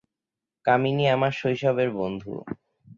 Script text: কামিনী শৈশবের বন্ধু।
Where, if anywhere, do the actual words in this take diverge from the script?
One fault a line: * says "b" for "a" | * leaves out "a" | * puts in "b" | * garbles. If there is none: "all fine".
* puts in "আমার"